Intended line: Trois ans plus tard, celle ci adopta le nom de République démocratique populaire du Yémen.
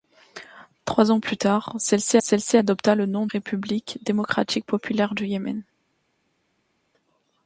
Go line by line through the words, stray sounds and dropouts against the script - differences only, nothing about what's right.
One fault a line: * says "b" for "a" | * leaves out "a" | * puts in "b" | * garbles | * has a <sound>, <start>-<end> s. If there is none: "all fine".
* puts in "celle ci"
* leaves out "de"